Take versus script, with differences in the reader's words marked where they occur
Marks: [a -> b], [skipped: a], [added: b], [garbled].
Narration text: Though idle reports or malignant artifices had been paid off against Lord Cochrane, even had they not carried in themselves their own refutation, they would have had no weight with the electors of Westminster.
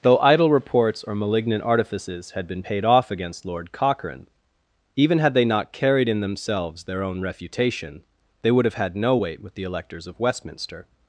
Though idle reports or malignant artifices had been paid off against Lord Cochrane, even had they not carried in themselves their own refutation, they would have had no weight with the electors of Westminster.